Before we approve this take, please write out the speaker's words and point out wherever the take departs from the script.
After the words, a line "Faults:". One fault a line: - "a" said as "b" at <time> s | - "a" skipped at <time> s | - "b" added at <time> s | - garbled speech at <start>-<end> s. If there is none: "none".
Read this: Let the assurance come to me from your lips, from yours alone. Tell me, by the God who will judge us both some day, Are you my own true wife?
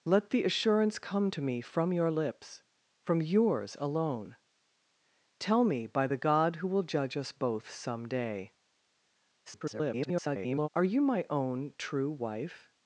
Let the assurance come to me from your lips, from yours alone. Tell me, by the God who will judge us both some day, [garbled] Are you my own true wife?
Faults:
- garbled speech at 9.5-10.7 s